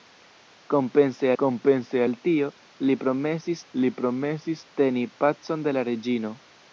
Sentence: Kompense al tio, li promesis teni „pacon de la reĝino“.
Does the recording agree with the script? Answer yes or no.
no